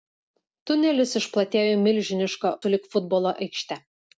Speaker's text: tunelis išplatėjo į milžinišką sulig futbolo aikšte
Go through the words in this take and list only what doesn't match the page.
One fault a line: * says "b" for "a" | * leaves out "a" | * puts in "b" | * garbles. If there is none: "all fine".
all fine